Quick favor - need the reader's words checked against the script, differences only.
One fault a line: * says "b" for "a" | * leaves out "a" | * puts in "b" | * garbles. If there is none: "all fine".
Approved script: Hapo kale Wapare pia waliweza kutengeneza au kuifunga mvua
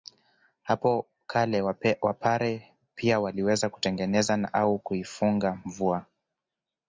all fine